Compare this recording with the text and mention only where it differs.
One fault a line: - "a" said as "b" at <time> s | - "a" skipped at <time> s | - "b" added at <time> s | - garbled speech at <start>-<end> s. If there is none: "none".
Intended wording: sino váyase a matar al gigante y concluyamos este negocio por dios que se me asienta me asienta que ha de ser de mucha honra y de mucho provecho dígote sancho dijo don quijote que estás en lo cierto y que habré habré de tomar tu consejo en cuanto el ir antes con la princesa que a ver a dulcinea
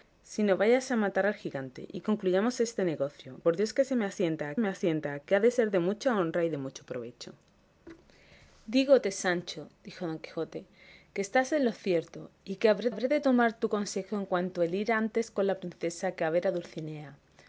none